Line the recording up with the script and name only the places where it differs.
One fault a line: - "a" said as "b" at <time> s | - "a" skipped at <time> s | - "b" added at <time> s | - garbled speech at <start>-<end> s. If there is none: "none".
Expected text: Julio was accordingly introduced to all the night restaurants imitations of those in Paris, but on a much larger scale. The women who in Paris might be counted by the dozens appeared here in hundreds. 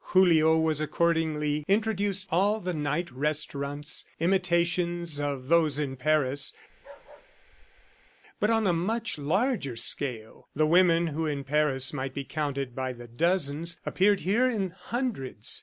- "to" skipped at 2.3 s